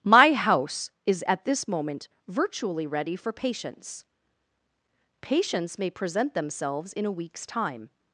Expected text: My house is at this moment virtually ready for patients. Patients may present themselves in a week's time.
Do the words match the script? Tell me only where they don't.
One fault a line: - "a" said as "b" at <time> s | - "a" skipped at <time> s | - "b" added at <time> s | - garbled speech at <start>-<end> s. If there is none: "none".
none